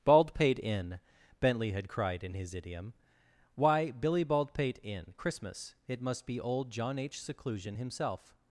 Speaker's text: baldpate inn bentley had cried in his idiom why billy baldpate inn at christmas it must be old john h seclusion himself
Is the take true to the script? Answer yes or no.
no